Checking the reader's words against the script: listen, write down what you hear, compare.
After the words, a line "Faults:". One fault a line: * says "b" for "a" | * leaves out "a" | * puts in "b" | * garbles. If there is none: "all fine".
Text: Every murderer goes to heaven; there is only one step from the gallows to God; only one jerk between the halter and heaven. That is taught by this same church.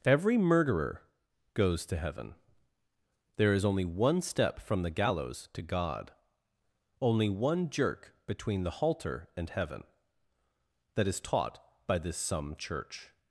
Every murderer goes to heaven; there is only one step from the gallows to God; only one jerk between the halter and heaven. That is taught by this some church.
Faults:
* says "some" for "same"